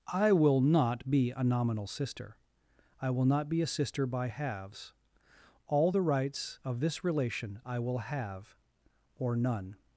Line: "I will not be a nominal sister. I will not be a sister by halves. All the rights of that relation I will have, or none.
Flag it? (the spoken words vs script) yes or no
yes